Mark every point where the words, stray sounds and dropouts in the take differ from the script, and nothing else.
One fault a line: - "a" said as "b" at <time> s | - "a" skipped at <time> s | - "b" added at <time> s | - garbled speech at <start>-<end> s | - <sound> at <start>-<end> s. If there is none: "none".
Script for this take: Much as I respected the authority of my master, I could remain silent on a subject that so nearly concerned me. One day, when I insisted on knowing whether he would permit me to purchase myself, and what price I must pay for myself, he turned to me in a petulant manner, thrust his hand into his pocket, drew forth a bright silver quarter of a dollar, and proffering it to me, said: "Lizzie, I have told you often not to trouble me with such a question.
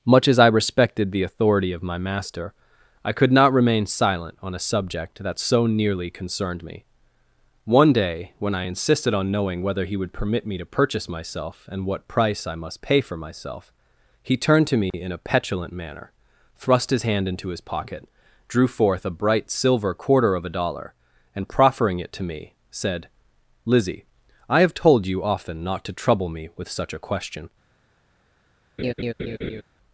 - "not" added at 3.3 s
- dropout at 14.9-14.9 s
- laugh at 28.8-29.6 s